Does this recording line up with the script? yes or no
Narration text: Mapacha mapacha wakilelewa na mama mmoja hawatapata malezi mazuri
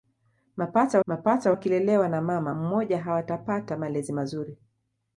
yes